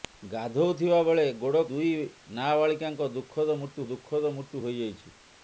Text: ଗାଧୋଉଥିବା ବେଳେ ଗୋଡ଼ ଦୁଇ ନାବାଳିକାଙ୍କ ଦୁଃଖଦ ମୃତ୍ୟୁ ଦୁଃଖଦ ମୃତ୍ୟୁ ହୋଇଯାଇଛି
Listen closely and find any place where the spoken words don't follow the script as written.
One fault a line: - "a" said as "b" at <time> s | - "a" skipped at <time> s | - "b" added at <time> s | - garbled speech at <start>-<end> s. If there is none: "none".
none